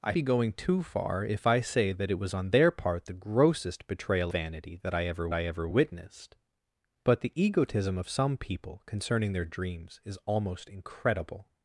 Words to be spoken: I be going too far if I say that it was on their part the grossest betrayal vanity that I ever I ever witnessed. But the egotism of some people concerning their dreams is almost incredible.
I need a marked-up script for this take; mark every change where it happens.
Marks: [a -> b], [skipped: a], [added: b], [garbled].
I be going too far if I say that it was on their part the grossest betrayal vanity that I ever I ever witnessed. But the egotism of some people concerning their dreams is almost incredible.